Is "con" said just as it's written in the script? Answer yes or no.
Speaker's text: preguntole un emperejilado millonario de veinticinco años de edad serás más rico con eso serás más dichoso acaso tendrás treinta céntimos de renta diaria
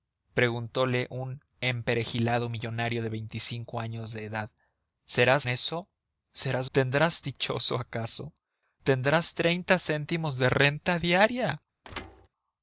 no